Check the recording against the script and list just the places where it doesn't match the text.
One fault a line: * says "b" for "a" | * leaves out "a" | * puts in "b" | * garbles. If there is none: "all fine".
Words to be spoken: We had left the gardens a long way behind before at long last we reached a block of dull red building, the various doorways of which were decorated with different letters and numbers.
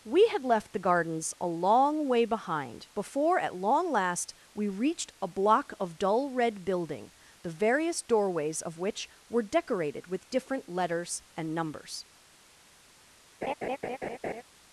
all fine